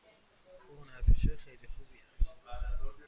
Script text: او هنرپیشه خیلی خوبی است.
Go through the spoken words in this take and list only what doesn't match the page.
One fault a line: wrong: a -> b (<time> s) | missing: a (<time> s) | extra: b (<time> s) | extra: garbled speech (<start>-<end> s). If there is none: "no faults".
no faults